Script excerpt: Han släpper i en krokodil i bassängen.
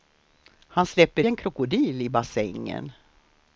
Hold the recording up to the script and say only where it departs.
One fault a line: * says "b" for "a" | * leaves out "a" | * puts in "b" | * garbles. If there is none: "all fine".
* leaves out "i"